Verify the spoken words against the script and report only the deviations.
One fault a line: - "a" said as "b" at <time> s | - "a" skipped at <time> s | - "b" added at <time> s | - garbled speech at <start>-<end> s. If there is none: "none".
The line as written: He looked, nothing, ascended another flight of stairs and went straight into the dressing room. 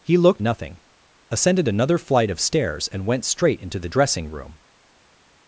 none